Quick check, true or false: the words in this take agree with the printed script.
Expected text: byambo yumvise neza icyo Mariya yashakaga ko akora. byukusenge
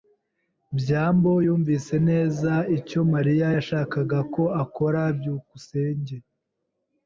true